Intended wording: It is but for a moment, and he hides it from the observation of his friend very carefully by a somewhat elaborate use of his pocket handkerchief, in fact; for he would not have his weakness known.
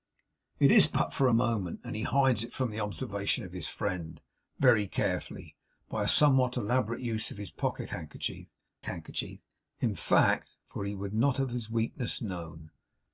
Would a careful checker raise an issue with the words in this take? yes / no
yes